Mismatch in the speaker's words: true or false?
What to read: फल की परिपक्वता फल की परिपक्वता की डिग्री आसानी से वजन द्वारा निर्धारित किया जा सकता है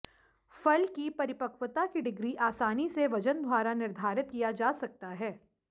true